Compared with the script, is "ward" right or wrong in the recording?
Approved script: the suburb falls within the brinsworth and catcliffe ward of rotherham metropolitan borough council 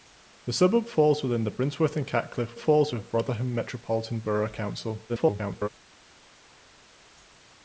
wrong